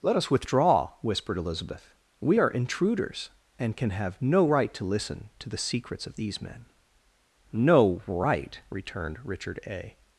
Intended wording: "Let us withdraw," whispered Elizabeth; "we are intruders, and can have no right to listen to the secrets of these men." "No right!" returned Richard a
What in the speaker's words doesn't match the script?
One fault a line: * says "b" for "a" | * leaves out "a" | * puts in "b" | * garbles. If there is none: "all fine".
all fine